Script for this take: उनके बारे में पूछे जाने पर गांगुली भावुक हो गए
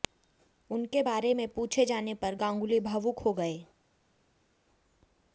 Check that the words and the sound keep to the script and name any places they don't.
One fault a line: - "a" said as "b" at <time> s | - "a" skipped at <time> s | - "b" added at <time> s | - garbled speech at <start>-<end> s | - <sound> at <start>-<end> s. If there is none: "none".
none